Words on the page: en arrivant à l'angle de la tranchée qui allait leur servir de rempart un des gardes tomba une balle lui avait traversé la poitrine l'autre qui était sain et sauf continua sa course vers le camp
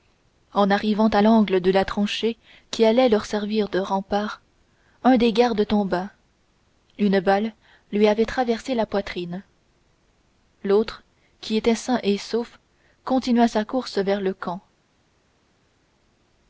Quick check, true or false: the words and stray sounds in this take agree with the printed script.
true